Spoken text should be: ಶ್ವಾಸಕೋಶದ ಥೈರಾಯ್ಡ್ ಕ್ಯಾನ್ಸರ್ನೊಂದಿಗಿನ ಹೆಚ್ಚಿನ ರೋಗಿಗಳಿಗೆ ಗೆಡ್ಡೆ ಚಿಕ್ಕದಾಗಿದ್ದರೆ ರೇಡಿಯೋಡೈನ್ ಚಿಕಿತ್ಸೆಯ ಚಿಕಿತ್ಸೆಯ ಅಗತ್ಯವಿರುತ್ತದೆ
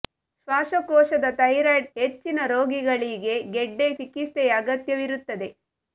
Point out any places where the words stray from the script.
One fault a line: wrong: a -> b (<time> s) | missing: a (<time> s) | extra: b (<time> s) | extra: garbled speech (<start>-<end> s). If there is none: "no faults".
missing: ಕ್ಯಾನ್ಸರ್ನೊಂದಿಗಿನ (1.9 s)
missing: ಚಿಕ್ಕದಾಗಿದ್ದರೆ ರೇಡಿಯೋಡೈನ್ ಚಿಕಿತ್ಸೆಯ (3.9 s)